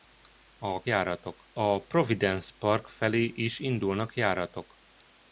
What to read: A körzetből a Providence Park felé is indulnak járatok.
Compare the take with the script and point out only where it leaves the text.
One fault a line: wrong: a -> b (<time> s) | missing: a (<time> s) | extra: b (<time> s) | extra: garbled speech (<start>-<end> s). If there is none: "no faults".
wrong: körzetből -> járatok (0.8 s)